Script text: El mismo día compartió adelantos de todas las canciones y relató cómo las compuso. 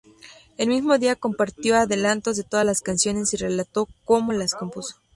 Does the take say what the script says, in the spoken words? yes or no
yes